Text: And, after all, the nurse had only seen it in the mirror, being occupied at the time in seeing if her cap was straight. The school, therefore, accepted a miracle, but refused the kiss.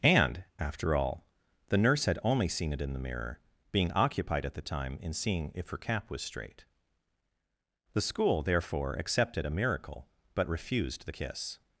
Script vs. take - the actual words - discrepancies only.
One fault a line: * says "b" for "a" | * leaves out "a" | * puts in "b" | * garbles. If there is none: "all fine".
all fine